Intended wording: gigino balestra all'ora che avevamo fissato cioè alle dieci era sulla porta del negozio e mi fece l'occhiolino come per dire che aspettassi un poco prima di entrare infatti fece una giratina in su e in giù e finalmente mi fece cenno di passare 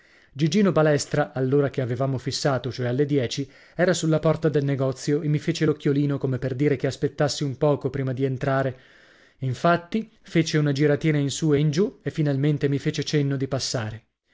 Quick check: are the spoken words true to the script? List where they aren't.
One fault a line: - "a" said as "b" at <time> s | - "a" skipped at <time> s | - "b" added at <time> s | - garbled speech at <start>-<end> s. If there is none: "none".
none